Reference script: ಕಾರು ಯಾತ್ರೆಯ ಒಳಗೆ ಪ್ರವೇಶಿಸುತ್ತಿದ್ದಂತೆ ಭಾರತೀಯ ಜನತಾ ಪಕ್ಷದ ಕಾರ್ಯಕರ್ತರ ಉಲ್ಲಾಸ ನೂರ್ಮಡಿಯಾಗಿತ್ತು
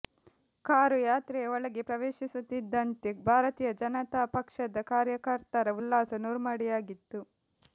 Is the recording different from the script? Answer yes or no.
no